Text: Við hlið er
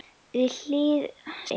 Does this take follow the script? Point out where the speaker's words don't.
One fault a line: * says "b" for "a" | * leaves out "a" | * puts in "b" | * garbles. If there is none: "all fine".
all fine